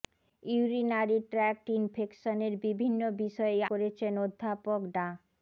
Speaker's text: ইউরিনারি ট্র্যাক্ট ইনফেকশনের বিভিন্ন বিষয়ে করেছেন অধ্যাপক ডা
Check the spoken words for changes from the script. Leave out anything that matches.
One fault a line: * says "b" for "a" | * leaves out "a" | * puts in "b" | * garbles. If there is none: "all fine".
all fine